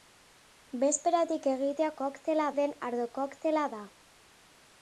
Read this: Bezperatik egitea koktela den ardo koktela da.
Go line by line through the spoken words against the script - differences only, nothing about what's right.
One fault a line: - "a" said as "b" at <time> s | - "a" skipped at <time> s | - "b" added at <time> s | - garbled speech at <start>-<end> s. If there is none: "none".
none